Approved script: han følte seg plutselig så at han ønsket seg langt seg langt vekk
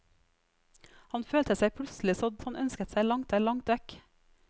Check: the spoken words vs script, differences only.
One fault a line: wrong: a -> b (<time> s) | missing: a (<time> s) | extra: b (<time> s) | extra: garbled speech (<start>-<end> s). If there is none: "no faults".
no faults